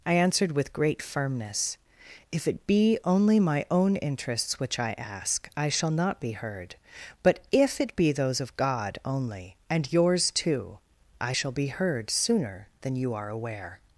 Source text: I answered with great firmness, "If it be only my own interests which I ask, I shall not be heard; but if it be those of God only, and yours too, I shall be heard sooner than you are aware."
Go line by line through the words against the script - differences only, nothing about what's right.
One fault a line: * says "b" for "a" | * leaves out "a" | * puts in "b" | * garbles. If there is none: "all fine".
all fine